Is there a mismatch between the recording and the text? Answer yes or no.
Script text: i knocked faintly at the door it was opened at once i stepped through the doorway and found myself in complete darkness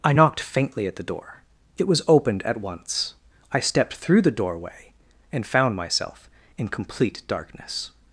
no